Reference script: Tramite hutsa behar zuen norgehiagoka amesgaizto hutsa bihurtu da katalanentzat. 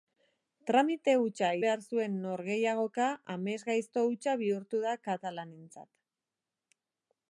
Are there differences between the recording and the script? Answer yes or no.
no